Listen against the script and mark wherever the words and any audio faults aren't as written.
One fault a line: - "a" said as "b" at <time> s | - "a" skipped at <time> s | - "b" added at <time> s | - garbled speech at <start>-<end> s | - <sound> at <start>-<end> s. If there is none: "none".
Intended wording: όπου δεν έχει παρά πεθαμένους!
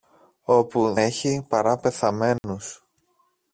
- "δεν" skipped at 0.9 s
- dropout at 2.4-2.4 s